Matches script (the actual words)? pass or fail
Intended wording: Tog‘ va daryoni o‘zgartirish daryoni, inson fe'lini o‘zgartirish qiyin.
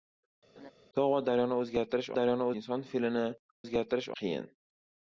pass